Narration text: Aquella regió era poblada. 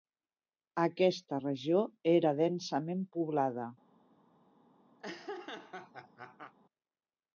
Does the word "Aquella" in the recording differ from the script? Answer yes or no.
yes